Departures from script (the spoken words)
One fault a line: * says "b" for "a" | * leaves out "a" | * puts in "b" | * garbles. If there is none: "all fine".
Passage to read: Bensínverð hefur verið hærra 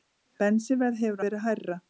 all fine